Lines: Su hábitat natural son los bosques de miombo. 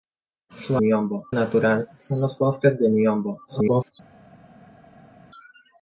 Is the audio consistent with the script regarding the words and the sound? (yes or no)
no